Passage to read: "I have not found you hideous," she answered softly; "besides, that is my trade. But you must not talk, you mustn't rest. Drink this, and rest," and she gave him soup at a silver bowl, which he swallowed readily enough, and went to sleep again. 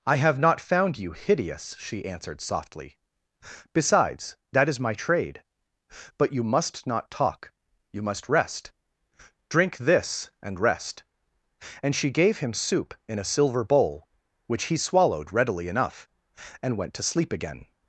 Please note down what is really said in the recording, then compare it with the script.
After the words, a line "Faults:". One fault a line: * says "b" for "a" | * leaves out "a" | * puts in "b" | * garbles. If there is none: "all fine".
"I have not found you hideous," she answered softly; "besides, that is my trade. But you must not talk, you must rest. Drink this, and rest," and she gave him soup in a silver bowl, which he swallowed readily enough, and went to sleep again.
Faults:
* says "must" for "mustn't"
* says "in" for "at"